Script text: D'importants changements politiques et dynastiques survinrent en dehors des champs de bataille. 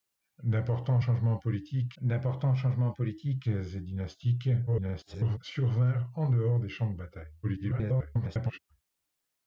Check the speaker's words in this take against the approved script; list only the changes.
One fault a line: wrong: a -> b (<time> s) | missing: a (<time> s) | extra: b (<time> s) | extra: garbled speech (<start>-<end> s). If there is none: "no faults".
extra: d'importants changements politiques (2.0 s)
extra: garbled speech (4.7-5.4 s)
extra: garbled speech (7.4-8.6 s)